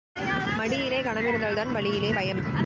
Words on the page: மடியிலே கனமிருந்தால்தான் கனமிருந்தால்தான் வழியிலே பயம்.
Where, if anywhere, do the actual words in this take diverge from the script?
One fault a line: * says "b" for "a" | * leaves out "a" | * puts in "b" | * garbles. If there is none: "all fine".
* leaves out "கனமிருந்தால்தான்"